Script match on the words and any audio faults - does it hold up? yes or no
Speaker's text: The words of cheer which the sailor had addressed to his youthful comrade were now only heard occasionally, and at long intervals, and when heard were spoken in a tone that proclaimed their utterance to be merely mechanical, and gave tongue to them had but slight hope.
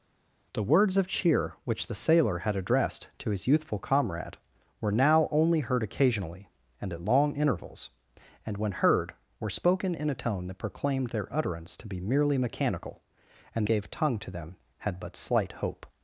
yes